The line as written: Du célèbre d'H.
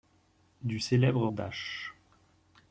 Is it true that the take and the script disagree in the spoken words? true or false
false